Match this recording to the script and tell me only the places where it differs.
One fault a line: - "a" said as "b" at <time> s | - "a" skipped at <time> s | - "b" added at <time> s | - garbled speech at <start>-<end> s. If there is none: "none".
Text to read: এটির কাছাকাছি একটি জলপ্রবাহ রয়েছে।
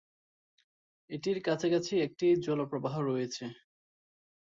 none